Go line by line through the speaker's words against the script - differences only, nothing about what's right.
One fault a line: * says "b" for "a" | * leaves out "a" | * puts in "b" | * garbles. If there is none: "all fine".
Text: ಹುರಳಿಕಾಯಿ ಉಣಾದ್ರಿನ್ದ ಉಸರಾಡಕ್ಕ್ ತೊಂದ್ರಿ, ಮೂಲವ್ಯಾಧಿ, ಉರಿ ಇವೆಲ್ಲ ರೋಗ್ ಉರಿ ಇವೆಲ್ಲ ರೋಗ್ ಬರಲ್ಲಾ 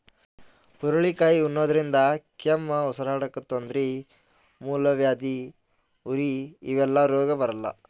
* puts in "ಕೆಮ್ಮ್"
* leaves out "ಉರಿ ಇವೆಲ್ಲ ರೋಗ್"